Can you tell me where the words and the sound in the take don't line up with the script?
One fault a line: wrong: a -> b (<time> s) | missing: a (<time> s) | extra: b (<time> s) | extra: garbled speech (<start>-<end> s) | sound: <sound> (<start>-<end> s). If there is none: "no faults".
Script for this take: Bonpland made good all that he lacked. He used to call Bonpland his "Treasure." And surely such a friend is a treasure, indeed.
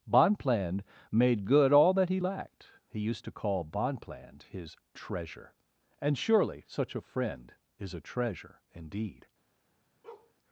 sound: bark (10.0-10.3 s)